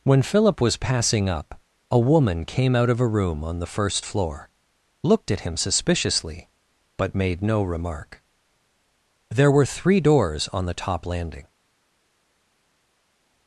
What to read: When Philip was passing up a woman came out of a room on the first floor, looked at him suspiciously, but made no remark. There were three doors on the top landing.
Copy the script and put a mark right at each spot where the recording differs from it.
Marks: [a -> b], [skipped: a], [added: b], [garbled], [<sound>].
When Philip was passing up a woman came out of a room on the first floor, looked at him suspiciously, but made no remark. There were three doors on the top landing.